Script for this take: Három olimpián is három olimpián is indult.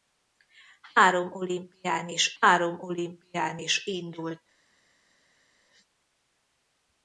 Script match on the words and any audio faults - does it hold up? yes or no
yes